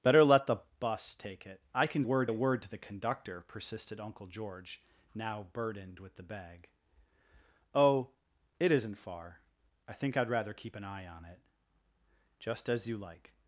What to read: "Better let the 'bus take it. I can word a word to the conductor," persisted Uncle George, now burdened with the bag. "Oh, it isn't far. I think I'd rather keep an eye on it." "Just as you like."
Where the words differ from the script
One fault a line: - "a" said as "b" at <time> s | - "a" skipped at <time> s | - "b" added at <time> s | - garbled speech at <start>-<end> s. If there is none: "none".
none